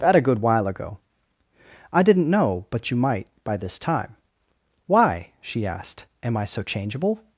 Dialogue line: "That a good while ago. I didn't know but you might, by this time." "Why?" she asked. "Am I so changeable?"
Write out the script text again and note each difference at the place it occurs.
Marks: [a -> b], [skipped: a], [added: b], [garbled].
"That a good while ago. I didn't know but you might, by this time." "Why?" she asked. "Am I so changeable?"